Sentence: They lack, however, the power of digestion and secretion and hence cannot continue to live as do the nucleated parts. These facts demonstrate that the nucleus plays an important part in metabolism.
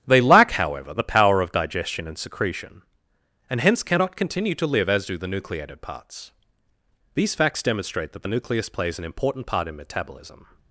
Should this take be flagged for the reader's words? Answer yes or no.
no